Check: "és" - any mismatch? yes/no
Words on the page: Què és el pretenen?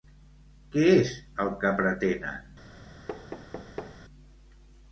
no